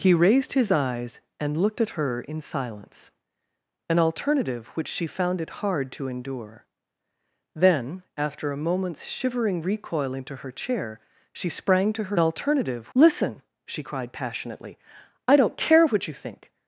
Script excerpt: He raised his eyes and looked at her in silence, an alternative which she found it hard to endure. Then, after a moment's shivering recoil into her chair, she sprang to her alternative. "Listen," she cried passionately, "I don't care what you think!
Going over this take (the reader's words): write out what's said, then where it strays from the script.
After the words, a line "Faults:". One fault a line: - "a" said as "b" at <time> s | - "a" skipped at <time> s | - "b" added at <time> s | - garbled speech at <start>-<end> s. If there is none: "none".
He raised his eyes and looked at her in silence, an alternative which she found it hard to endure. Then, after a moment's shivering recoil into her chair, she sprang to her alternative. "Listen," she cried passionately, "I don't care what you think!
Faults:
none